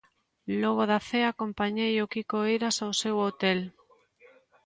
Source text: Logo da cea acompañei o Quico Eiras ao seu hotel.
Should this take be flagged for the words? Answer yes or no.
no